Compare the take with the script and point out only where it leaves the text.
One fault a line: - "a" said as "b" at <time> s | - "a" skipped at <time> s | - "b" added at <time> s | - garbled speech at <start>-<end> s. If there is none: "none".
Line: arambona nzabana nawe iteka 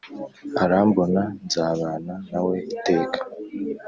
none